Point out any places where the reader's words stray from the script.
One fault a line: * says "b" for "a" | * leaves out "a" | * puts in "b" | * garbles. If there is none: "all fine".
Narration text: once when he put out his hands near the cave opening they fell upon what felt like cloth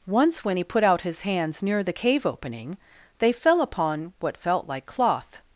all fine